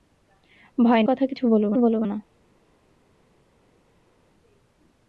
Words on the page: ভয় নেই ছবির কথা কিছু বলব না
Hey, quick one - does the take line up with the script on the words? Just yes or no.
no